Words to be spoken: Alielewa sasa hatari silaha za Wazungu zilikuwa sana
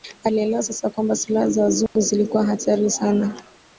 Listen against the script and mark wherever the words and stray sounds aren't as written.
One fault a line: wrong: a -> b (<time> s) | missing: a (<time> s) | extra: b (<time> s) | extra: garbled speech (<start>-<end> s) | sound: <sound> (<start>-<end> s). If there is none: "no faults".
wrong: hatari -> kwamba (0.9 s)
sound: dropout (1.9-2.0 s)
extra: hatari (2.5 s)